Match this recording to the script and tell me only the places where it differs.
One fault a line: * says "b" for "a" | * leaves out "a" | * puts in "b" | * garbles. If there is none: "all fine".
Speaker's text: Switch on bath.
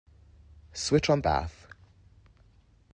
all fine